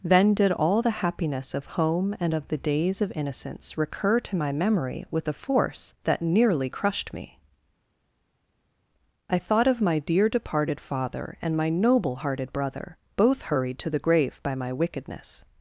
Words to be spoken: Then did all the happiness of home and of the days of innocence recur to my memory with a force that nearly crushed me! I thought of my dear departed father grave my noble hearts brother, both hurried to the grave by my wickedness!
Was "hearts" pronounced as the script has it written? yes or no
no